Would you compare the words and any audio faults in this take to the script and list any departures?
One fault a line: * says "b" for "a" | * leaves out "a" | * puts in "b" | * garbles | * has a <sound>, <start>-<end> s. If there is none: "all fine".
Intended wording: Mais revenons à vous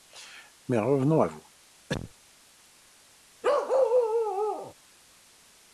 * has a cough, 1.9-2.1 s
* has a bark, 3.4-4.7 s